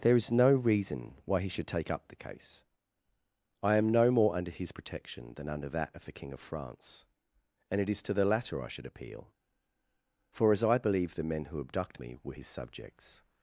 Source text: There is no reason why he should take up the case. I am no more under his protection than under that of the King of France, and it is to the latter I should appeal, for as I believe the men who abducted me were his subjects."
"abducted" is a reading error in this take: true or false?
true